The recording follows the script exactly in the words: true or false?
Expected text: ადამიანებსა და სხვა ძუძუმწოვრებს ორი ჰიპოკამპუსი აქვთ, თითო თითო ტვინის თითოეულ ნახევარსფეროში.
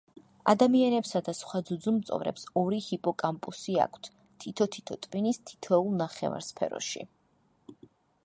true